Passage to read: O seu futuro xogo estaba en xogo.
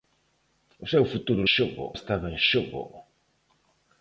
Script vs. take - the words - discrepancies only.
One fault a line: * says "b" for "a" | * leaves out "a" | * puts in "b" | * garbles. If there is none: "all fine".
all fine